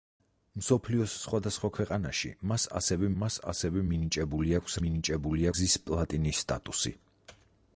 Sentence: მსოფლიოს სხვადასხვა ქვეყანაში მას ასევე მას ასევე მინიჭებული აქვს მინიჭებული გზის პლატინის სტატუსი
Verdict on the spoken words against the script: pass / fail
pass